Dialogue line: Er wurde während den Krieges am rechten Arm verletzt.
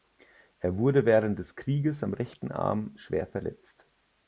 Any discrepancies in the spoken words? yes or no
yes